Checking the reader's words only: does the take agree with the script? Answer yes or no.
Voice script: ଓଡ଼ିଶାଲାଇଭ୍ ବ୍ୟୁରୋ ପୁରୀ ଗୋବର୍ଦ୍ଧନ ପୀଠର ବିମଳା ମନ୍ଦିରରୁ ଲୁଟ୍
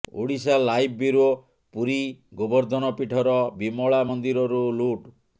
yes